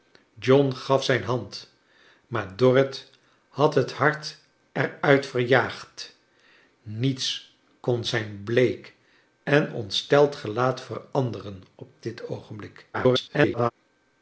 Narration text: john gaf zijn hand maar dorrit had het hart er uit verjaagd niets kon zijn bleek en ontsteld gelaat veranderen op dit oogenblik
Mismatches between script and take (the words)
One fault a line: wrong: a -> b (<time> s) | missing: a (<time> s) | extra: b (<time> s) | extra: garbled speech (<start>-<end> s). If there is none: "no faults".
extra: garbled speech (12.9-13.7 s)